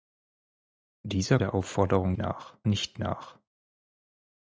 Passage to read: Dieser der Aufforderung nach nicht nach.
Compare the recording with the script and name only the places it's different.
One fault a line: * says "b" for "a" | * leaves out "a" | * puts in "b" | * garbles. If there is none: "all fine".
all fine